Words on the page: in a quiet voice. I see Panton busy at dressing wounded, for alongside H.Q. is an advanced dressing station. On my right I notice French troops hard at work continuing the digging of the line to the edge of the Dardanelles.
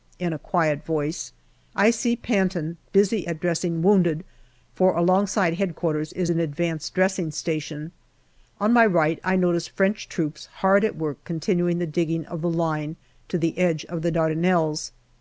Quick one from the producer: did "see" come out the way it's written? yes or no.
yes